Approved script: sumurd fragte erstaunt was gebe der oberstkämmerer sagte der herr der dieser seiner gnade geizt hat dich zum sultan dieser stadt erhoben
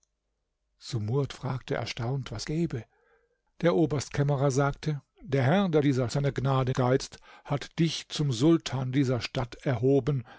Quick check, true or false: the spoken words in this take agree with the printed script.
true